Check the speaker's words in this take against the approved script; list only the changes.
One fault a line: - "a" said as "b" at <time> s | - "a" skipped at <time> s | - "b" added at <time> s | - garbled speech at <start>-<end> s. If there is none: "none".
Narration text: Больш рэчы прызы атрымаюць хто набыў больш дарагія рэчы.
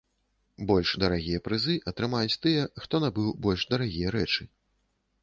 - "рэчы" said as "дарагія" at 1.0 s
- "тыя" added at 2.4 s